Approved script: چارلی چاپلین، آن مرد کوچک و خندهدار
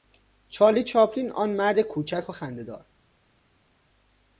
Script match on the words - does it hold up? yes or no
yes